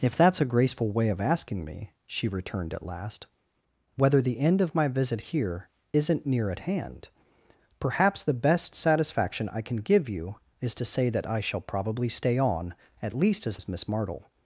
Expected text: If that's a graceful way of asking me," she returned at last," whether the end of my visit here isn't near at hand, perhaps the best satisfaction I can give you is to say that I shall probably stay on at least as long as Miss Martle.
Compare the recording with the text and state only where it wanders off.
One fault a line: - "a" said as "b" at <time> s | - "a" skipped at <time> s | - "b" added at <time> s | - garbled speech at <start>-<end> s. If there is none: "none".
- "long" skipped at 13.6 s